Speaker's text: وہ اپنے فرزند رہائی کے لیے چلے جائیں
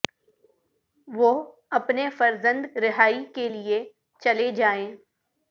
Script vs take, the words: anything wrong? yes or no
no